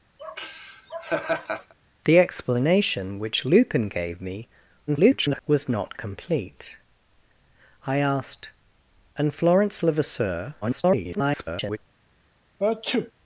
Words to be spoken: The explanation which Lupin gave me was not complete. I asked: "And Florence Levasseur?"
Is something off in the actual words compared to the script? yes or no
yes